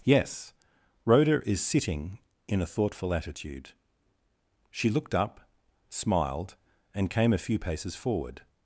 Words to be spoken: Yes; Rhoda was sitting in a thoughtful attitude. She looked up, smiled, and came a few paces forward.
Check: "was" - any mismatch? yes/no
yes